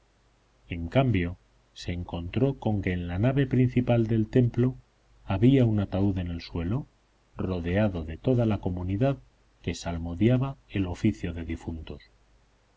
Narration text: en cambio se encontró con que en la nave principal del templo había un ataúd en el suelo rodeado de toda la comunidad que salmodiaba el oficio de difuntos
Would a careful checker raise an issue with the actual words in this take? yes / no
no